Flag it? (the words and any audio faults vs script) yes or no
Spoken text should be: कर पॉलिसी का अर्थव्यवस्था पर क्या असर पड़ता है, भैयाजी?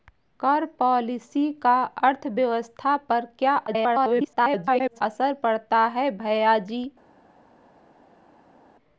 yes